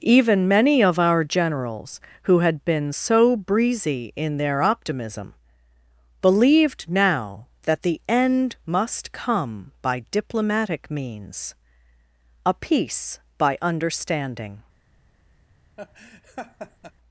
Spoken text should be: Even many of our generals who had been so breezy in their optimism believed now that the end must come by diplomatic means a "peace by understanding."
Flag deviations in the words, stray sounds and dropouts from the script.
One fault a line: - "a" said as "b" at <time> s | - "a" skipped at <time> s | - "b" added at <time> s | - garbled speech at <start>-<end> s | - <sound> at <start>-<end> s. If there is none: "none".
- laugh at 15.8-16.9 s